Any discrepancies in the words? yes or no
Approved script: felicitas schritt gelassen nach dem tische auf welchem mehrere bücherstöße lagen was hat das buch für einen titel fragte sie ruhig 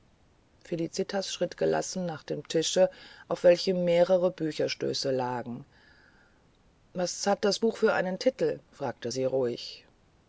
no